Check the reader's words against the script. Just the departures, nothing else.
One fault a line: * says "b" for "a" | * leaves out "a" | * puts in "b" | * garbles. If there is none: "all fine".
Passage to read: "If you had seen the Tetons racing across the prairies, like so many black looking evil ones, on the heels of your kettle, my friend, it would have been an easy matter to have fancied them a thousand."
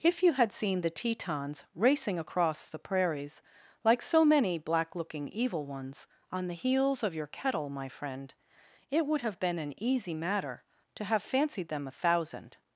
all fine